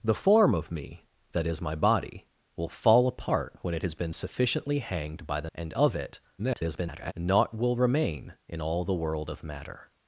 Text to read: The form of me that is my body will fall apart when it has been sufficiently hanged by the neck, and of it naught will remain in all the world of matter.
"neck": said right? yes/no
no